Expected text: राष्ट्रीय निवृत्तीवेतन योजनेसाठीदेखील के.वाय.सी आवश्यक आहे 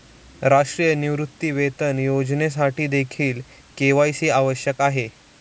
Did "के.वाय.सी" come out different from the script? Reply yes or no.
no